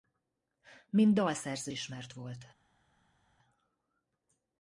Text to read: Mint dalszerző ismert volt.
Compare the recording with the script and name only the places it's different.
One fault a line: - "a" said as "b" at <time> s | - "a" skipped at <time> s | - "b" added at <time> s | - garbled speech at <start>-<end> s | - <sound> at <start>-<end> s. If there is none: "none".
none